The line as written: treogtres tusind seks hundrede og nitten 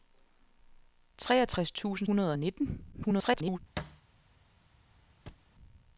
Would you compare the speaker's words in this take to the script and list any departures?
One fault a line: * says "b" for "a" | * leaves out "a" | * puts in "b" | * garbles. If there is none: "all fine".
* leaves out "seks"
* garbles